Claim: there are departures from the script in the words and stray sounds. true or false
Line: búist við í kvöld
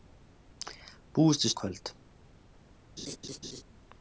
true